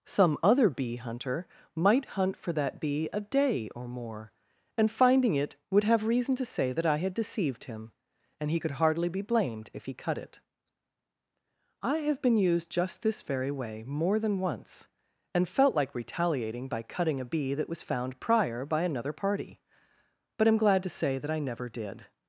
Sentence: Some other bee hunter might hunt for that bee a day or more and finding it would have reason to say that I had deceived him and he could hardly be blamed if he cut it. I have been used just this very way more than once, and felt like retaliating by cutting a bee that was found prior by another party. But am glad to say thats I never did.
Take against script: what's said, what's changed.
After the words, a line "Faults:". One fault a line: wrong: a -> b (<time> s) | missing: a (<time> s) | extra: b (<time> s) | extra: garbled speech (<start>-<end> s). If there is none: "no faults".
Some other bee hunter might hunt for that bee a day or more and finding it would have reason to say that I had deceived him and he could hardly be blamed if he cut it. I have been used just this very way more than once, and felt like retaliating by cutting a bee that was found prior by another party. But am glad to say that I never did.
Faults:
wrong: thats -> that (21.2 s)